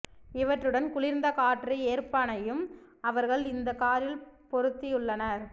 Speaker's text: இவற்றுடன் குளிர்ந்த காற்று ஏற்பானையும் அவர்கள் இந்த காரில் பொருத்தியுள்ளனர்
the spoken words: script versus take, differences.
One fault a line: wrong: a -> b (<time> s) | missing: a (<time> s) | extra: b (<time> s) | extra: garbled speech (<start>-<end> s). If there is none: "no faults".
no faults